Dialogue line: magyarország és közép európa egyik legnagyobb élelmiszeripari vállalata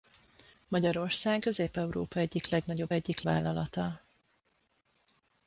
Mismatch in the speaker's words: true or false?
true